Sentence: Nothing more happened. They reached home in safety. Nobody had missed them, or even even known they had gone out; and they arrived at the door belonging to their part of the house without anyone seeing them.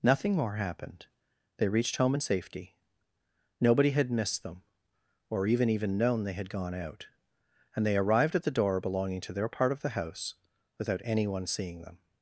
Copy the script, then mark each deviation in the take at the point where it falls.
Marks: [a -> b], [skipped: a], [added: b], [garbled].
Nothing more happened. They reached home in safety. Nobody had missed them, or even even known they had gone out; and they arrived at the door belonging to their part of the house without anyone seeing them.